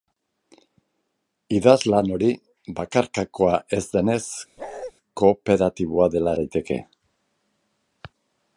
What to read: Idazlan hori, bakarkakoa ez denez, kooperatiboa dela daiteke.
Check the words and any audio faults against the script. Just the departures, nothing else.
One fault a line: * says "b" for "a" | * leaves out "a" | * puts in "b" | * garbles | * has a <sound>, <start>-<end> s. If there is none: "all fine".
* has a bark, 4.6-4.9 s